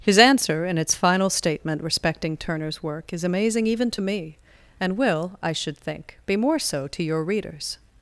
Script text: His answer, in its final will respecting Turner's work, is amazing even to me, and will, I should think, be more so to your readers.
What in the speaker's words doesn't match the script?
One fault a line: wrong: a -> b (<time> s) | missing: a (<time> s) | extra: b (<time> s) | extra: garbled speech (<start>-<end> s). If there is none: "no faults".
wrong: will -> statement (1.3 s)